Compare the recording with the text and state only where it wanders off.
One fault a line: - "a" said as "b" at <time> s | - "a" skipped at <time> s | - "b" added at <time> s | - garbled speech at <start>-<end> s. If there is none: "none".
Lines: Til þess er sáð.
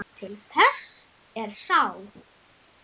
none